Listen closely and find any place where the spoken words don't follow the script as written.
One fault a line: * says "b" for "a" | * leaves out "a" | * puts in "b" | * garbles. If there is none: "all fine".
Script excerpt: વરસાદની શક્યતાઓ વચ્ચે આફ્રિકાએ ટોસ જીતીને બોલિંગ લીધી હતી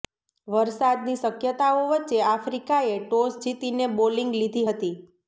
all fine